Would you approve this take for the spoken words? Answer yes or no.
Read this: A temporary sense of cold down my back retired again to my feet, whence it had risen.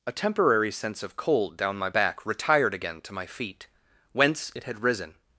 yes